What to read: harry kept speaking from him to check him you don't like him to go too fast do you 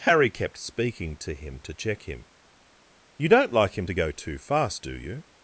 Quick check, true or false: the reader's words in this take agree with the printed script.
false